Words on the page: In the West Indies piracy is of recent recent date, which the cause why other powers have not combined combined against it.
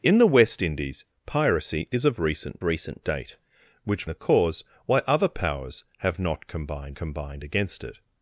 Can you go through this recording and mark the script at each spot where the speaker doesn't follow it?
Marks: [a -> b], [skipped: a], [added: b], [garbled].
In the West Indies piracy is of recent recent date, which the cause why other powers have not combined combined against it.